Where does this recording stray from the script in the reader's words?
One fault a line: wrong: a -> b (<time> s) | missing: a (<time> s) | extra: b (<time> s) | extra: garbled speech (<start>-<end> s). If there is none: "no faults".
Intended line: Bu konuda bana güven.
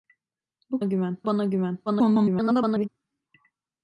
wrong: konuda -> güven (0.8 s)
extra: garbled speech (1.9-2.9 s)